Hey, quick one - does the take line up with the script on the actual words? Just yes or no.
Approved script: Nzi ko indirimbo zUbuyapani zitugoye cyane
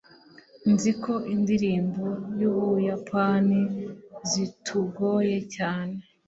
yes